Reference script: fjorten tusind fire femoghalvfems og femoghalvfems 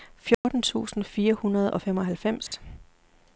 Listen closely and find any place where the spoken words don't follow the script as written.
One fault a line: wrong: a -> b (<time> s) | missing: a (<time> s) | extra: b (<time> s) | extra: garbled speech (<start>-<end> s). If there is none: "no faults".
wrong: femoghalvfems -> hundrede (1.3 s)